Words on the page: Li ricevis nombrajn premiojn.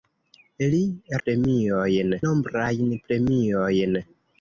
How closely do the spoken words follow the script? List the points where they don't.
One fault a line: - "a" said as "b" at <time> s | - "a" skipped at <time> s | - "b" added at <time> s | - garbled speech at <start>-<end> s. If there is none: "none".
- "ricevis" said as "premiojn" at 1.3 s